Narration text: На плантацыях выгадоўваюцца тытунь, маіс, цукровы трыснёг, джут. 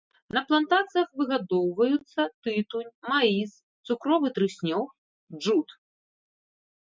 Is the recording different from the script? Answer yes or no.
no